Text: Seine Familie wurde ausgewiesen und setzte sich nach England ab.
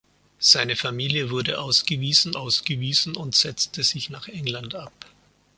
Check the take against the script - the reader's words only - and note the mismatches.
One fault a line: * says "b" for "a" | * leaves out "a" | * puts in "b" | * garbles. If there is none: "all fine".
* puts in "ausgewiesen"